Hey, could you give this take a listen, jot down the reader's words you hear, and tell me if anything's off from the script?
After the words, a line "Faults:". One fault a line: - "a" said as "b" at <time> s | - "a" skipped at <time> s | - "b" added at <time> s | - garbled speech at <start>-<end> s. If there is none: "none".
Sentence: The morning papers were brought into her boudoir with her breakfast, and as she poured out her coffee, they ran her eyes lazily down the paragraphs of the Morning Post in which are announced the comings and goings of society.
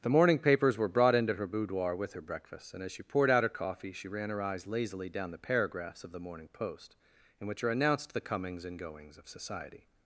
The morning papers were brought into her boudoir with her breakfast, and as she poured out her coffee, she ran her eyes lazily down the paragraphs of the Morning Post in which are announced the comings and goings of society.
Faults:
- "they" said as "she" at 3.9 s